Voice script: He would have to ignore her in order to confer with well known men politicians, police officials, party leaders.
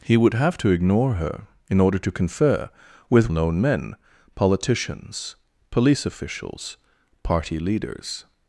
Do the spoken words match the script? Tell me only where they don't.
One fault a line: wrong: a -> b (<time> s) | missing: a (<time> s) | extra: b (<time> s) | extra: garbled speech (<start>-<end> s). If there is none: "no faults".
missing: well (3.3 s)